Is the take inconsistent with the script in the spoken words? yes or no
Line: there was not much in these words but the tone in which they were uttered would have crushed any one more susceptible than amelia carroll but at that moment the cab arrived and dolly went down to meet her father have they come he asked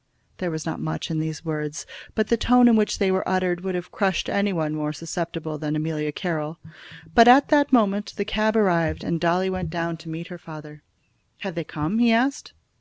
no